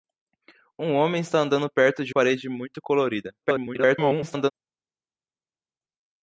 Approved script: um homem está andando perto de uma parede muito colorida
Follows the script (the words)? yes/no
no